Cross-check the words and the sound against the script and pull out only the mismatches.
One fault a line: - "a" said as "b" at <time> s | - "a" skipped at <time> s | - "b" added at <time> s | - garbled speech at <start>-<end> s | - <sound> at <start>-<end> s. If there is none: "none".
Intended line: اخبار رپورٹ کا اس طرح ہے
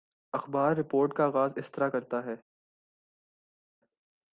- "آغاز" added at 1.2 s
- "کرتا" added at 1.9 s